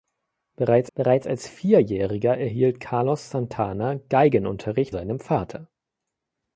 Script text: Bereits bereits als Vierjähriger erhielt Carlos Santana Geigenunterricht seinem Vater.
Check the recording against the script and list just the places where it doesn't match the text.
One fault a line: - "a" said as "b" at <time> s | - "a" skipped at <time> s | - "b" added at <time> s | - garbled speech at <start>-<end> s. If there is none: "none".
none